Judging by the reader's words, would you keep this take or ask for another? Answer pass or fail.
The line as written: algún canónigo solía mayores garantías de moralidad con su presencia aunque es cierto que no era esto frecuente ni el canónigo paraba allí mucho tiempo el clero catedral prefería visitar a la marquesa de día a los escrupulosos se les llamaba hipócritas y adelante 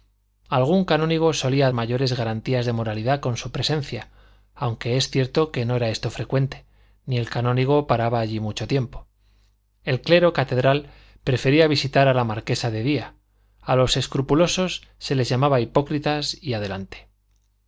pass